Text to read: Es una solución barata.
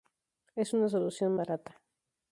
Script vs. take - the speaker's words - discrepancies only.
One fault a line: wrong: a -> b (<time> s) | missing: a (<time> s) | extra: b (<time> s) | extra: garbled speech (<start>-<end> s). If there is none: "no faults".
no faults